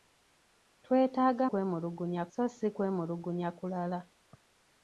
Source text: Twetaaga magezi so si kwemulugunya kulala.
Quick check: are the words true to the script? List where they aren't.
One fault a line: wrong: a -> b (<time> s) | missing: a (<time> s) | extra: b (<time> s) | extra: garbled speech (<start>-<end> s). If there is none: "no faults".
wrong: magezi -> kwemulugunya (1.5 s)